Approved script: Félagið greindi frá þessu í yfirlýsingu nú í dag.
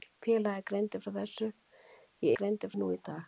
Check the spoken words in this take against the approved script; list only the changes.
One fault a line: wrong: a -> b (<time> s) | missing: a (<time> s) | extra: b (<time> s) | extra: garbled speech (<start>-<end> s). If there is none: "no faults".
wrong: yfirlýsingu -> greindi (2.4 s)